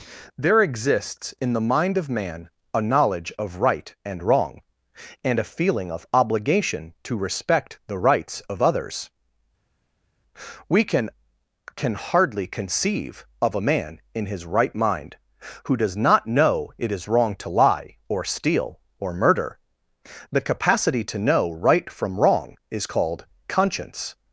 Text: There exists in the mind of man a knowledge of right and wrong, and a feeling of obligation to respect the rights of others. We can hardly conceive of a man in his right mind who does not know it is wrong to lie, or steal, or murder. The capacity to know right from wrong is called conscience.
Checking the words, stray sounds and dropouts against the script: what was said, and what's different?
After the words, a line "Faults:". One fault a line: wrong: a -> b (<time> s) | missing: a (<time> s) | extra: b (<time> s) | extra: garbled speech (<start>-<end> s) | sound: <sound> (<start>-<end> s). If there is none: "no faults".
There exists in the mind of man a knowledge of right and wrong, and a feeling of obligation to respect the rights of others. We can can hardly conceive of a man in his right mind who does not know it is wrong to lie, or steal, or murder. The capacity to know right from wrong is called conscience.
Faults:
extra: can (11.7 s)